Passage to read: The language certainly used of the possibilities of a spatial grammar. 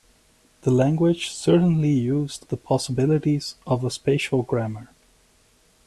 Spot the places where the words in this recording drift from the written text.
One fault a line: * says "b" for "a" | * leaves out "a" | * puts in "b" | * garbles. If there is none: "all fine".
* leaves out "of"